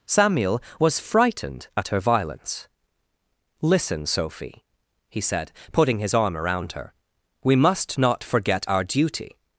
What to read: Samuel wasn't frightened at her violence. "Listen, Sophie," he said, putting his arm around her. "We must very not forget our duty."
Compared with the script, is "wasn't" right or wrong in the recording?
wrong